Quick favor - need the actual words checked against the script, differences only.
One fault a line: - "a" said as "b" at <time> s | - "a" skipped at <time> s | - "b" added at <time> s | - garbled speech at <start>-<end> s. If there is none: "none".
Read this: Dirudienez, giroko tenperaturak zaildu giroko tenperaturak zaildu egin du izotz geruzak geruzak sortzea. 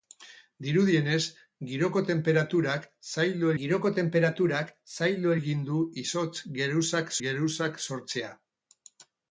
none